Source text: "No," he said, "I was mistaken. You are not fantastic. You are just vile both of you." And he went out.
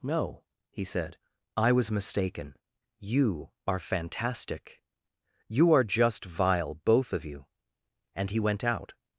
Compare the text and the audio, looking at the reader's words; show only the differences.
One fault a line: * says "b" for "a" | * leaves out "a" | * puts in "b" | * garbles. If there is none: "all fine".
* leaves out "not"